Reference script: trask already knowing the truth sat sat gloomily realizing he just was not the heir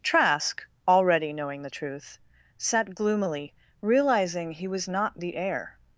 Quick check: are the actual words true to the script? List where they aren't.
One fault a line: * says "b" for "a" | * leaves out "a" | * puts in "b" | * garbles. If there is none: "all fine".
* leaves out "sat"
* leaves out "just"